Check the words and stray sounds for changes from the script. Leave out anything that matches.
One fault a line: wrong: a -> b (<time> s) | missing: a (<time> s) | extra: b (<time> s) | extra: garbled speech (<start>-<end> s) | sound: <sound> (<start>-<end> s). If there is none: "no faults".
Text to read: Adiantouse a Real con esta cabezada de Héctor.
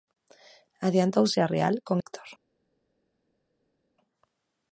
missing: esta cabezada de (2.0 s)